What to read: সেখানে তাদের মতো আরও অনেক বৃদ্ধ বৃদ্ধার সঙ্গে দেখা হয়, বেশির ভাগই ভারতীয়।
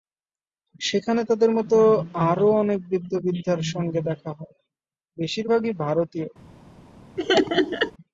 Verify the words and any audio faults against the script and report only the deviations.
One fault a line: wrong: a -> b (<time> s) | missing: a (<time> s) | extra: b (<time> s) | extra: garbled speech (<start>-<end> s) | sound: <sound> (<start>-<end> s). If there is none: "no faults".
sound: laugh (7.2-7.9 s)